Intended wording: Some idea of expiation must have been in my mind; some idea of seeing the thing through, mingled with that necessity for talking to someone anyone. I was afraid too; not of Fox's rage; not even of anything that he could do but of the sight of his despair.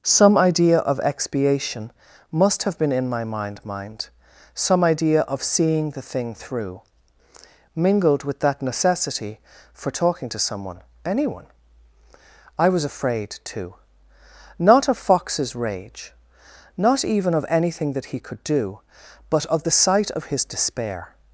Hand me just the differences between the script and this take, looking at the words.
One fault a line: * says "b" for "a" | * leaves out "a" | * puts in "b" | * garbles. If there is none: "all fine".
* puts in "mind"